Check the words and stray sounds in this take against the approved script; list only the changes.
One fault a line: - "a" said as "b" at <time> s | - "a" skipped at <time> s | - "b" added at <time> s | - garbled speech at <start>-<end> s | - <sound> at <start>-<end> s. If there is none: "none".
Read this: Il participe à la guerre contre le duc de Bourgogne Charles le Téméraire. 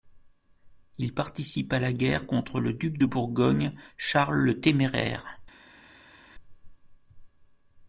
none